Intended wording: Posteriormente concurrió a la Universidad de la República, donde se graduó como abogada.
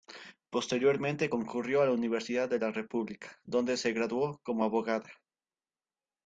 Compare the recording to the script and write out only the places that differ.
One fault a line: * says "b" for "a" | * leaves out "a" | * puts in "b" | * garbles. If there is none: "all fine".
all fine